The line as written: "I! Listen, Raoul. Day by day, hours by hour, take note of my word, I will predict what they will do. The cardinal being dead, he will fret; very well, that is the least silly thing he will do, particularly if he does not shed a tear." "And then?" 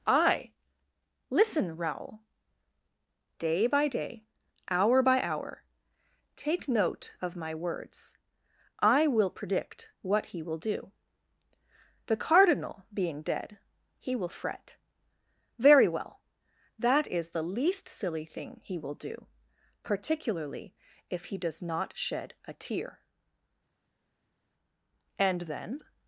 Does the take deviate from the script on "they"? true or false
true